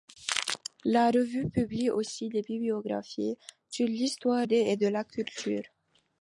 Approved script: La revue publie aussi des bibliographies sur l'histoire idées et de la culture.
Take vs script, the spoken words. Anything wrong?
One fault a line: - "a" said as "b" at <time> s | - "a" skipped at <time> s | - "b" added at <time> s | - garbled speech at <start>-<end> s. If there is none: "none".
none